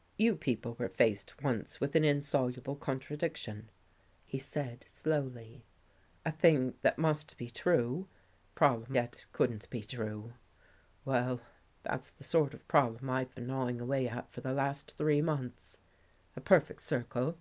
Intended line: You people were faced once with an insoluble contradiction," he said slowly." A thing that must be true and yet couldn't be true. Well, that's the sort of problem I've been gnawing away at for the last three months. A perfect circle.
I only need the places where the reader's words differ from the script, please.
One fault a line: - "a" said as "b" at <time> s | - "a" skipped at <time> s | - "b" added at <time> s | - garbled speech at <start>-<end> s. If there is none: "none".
- "and" said as "problem" at 8.5 s